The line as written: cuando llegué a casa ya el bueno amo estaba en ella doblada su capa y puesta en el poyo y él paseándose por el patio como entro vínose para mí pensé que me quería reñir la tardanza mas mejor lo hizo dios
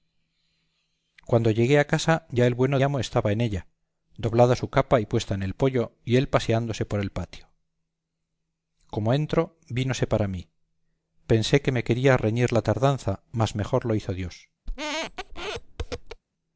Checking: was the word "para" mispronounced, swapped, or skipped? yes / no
no